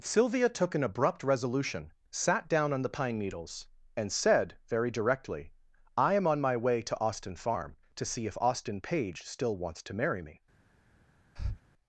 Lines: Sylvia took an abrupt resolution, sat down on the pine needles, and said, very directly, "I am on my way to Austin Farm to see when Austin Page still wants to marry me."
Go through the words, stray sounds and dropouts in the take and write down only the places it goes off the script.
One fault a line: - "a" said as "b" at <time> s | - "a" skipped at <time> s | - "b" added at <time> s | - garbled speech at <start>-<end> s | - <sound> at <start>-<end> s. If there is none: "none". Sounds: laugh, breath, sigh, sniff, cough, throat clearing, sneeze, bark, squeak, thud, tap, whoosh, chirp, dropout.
- "when" said as "if" at 8.2 s
- breath at 11.4-11.6 s